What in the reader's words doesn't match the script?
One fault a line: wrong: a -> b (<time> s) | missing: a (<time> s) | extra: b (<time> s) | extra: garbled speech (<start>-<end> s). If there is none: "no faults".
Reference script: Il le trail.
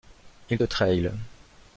no faults